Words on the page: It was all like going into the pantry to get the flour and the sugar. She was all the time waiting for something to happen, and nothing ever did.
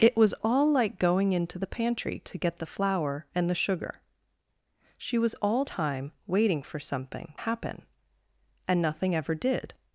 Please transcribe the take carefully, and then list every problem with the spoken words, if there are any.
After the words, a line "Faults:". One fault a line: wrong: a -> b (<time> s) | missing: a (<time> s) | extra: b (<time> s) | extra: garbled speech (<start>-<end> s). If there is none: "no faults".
It was all like going into the pantry to get the flour and the sugar. She was all time waiting for something happen, and nothing ever did.
Faults:
missing: the (5.6 s)
missing: to (7.3 s)